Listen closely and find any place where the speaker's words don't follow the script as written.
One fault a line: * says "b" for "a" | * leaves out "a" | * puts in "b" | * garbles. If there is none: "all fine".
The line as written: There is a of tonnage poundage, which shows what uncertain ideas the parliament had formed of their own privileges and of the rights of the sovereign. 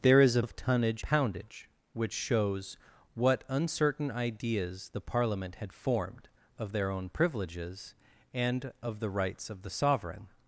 all fine